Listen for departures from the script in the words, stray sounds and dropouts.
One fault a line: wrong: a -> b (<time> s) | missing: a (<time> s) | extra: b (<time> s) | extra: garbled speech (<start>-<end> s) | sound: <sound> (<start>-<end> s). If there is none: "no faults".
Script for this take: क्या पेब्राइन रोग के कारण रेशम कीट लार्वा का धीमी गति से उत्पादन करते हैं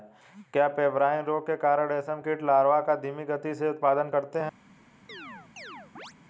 sound: chirp (5.1-6.1 s)